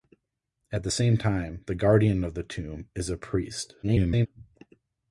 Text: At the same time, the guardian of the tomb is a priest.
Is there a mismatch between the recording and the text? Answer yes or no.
yes